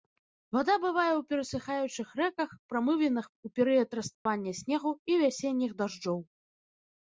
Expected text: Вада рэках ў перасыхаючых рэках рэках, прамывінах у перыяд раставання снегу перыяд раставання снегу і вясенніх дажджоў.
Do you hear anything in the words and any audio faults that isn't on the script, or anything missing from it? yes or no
yes